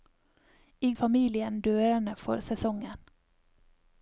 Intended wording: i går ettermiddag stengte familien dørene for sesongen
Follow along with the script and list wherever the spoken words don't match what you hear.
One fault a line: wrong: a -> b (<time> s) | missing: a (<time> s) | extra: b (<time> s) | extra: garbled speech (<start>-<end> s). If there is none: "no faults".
missing: går ettermiddag stengte (0.9 s)